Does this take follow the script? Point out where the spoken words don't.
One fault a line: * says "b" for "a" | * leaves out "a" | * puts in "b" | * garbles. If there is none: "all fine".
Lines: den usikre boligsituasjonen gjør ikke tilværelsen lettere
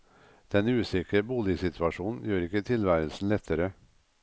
all fine